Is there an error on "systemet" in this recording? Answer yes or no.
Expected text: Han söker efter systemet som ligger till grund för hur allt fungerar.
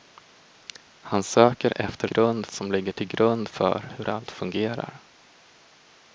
yes